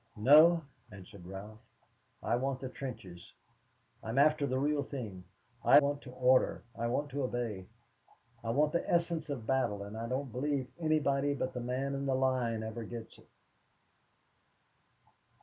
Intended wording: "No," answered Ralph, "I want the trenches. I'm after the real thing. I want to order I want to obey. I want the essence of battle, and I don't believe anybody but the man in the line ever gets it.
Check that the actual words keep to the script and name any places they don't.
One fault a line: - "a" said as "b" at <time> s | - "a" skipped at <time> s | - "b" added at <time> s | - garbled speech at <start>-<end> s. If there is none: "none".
none